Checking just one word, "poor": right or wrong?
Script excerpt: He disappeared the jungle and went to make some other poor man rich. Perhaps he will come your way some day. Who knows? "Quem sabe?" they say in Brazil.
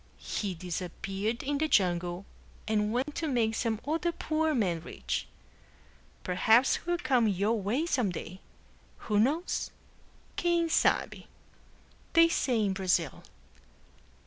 right